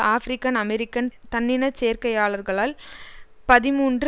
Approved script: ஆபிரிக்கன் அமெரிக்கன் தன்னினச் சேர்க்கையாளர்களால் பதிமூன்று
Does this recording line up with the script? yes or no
yes